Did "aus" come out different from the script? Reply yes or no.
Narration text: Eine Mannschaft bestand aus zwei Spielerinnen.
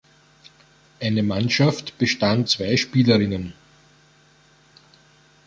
yes